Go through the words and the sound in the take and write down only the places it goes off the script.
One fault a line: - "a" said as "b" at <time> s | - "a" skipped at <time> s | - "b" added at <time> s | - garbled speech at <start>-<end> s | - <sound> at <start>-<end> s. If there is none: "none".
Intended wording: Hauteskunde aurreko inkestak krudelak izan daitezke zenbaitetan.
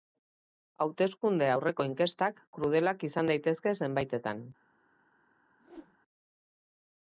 - whoosh at 5.6-6.0 s